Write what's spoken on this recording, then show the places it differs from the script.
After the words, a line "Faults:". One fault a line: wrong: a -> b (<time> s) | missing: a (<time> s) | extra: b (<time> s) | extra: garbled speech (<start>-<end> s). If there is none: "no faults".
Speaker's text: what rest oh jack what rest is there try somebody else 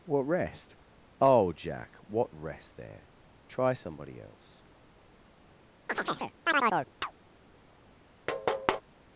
what rest oh jack what rest there try somebody else
Faults:
missing: is (2.8 s)